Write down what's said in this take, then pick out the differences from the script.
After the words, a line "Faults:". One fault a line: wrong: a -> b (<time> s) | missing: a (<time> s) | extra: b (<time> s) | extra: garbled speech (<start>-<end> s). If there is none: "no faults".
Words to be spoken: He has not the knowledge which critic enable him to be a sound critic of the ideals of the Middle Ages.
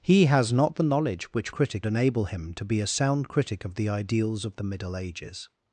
He has not the knowledge which critic enable him to be a sound critic of the ideals of the Middle Ages.
Faults:
no faults